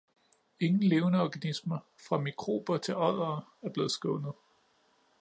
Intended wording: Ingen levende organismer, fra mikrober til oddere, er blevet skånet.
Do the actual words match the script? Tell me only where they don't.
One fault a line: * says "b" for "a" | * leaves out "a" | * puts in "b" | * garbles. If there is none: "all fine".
all fine